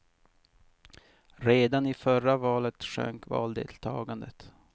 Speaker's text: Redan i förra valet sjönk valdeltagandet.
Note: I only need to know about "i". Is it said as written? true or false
true